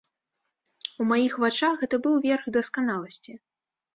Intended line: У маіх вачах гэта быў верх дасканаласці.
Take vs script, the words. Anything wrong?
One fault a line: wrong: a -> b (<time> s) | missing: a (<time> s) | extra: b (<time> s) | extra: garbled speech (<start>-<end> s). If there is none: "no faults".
no faults